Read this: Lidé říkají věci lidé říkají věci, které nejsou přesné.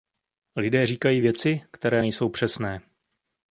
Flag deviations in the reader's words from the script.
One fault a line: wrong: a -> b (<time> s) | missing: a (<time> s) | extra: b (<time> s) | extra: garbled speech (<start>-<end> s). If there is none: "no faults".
missing: lidé říkají věci (1.6 s)